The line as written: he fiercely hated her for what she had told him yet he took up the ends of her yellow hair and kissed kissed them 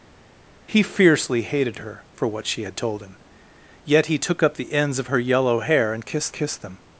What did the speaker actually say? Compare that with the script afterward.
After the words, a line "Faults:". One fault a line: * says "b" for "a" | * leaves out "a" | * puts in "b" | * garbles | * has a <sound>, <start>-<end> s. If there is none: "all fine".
he fiercely hated her for what she had told him yet he took up the ends of her yellow hair and kissed kissed them
Faults:
all fine